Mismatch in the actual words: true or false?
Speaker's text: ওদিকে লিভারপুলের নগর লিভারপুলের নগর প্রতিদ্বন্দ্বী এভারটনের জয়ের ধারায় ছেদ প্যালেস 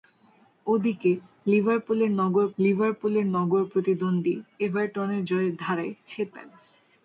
false